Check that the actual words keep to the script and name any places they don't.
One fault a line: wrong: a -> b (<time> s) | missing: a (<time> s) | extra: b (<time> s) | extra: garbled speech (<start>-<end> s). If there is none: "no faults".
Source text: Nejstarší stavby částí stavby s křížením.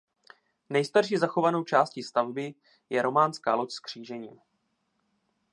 wrong: stavby -> zachovanou (1.2 s)
extra: je románská loď (2.9 s)